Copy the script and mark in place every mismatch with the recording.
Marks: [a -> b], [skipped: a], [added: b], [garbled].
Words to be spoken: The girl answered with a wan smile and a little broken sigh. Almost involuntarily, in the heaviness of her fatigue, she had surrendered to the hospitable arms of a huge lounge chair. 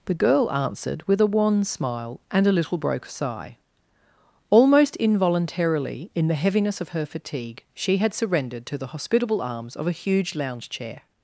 The girl answered with a wan smile and a little [broken -> broke] sigh. Almost involuntarily, in the heaviness of her fatigue, she had surrendered to the hospitable arms of a huge lounge chair.